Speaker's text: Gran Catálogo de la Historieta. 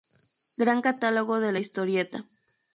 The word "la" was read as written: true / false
true